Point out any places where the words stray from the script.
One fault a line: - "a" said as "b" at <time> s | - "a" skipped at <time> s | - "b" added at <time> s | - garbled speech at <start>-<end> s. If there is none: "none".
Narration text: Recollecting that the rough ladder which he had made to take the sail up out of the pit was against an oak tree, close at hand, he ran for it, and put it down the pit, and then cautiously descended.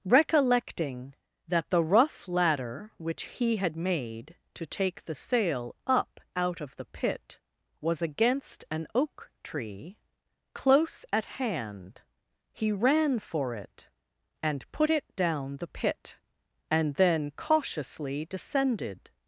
none